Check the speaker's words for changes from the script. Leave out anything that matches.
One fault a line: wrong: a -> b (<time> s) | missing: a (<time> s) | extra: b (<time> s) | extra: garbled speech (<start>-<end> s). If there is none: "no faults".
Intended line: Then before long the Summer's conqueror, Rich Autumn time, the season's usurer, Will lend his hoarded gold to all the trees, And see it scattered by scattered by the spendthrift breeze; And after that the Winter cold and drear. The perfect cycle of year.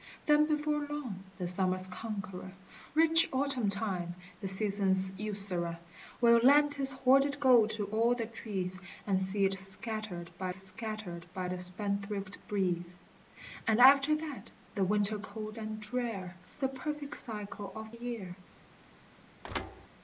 no faults